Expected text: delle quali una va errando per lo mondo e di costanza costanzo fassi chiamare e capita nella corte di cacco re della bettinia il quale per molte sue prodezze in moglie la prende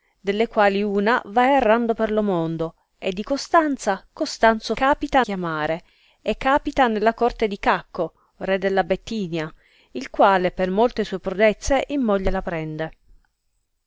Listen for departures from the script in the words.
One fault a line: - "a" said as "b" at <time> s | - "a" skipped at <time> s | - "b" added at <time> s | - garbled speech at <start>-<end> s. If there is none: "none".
- "fassi" said as "capita" at 4.7 s